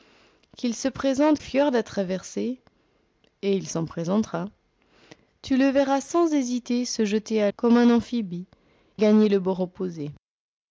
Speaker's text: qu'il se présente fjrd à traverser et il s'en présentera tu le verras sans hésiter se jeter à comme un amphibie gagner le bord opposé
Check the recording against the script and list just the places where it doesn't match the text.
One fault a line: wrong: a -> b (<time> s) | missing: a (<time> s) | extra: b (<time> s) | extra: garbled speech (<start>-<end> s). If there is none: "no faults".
no faults